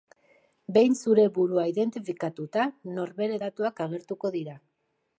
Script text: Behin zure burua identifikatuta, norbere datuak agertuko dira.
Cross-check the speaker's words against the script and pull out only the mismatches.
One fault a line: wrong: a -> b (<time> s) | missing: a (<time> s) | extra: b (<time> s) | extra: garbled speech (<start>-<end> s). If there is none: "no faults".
no faults